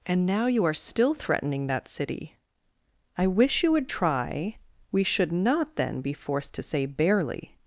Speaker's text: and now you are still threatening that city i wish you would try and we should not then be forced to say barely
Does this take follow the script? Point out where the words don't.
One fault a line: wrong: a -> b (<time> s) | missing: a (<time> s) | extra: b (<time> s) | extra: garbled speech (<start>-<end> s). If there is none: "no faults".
missing: and (4.6 s)